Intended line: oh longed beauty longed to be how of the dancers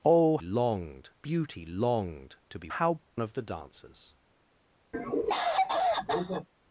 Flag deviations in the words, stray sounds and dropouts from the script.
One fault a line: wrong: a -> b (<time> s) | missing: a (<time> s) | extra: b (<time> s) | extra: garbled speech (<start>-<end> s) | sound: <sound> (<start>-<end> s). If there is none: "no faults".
sound: cough (4.9-6.5 s)